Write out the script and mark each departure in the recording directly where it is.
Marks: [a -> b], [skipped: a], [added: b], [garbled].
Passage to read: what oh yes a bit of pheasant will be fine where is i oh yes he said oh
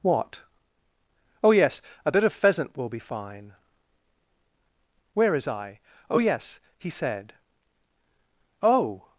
what oh yes a bit of pheasant will be fine where is i oh yes he said oh